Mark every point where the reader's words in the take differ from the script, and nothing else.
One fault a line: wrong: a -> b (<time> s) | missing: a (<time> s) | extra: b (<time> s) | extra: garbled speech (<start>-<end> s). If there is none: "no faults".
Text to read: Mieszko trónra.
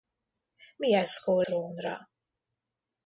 no faults